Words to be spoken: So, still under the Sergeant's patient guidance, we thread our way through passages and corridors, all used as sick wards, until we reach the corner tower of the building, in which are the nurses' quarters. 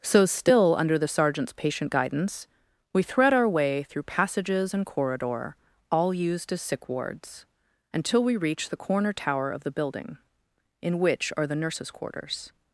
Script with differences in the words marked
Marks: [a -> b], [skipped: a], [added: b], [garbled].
So, still under the Sergeant's patient guidance, we thread our way through passages and [corridors, -> corridor] all used as sick wards, until we reach the corner tower of the building, in which are the nurses' quarters.